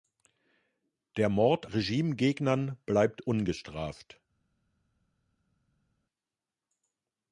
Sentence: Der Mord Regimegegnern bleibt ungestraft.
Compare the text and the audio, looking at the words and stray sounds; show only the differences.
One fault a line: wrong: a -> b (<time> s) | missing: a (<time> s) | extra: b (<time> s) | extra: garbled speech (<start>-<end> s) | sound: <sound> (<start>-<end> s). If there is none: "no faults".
no faults